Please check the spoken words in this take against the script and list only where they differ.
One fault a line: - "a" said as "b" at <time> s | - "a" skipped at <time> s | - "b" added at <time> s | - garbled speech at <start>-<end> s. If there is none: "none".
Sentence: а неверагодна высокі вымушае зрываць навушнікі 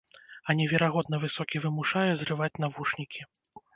none